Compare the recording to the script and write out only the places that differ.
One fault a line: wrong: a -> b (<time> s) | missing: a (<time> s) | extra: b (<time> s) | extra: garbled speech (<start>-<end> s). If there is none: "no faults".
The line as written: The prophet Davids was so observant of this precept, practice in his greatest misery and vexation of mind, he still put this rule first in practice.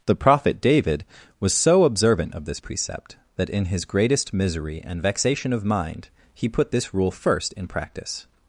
wrong: Davids -> David (0.6 s)
wrong: practice -> that (3.4 s)
missing: still (6.5 s)